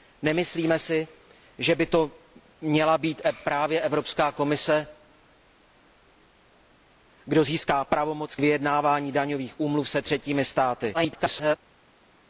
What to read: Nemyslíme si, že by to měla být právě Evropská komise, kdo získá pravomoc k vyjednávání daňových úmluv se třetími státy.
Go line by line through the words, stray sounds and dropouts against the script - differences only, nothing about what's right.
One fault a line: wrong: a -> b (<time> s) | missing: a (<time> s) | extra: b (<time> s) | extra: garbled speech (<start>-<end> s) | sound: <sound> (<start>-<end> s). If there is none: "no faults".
extra: garbled speech (10.9-11.6 s)